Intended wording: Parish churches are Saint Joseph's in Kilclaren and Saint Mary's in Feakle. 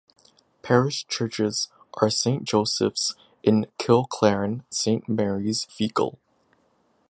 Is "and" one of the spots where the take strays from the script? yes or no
yes